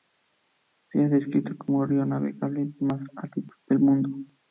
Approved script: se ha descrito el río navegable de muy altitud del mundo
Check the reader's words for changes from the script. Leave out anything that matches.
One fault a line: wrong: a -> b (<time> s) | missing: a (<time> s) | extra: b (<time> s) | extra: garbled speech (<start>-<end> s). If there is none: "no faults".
extra: como (1.6 s)
wrong: muy -> más (2.8 s)